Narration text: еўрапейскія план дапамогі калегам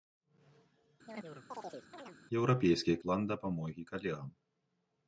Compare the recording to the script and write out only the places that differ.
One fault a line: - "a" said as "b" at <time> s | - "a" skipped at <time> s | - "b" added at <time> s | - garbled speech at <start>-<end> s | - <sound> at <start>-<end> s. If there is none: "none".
- chirp at 1.1-2.2 s